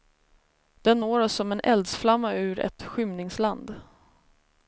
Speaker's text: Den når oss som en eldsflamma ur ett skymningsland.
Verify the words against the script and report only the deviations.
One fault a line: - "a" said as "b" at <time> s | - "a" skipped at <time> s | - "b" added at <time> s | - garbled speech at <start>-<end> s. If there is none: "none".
none